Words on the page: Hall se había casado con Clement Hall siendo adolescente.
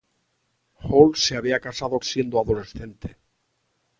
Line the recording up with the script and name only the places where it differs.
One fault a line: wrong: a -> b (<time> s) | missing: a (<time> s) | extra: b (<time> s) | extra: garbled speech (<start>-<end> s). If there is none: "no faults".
missing: con Clement Hall (2.0 s)